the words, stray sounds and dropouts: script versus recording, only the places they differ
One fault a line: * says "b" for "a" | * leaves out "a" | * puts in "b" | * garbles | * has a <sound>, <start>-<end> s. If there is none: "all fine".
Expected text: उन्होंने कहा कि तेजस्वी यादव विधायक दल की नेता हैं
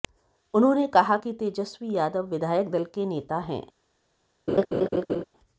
* says "के" for "की"
* has a laugh, 4.5-5.2 s